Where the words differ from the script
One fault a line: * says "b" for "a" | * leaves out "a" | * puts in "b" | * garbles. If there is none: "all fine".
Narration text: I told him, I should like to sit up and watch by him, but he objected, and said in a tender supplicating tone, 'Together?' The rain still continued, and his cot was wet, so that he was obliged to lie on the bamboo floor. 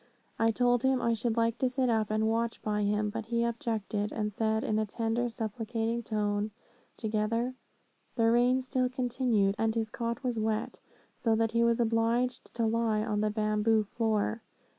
all fine